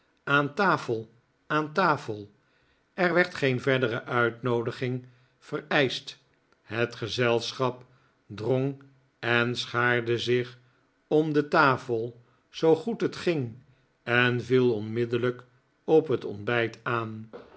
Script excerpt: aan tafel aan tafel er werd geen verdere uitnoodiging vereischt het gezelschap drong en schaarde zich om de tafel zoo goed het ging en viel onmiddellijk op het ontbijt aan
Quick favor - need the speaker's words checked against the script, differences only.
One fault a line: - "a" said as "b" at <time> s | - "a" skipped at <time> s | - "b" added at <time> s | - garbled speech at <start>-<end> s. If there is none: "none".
none